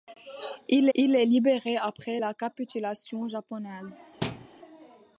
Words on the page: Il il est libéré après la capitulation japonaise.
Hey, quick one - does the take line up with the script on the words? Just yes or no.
yes